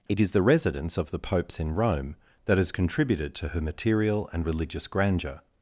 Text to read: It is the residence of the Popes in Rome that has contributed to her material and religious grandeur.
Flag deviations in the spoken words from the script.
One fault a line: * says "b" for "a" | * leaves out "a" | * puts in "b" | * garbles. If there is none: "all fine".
all fine